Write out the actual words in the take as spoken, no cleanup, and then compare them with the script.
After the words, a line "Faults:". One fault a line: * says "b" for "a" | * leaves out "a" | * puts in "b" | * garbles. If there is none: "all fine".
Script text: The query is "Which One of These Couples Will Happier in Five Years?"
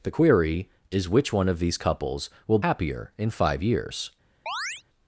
The query is "Which One of These Couples Will Happier in Five Years?"
Faults:
all fine